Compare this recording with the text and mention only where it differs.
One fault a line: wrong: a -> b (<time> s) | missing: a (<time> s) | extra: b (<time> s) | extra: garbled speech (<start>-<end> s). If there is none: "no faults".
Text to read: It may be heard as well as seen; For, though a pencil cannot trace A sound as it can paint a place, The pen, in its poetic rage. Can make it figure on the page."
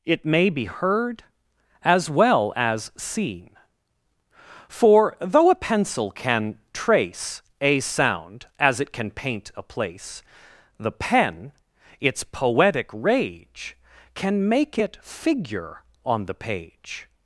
wrong: cannot -> can (6.1 s)
missing: in (11.5 s)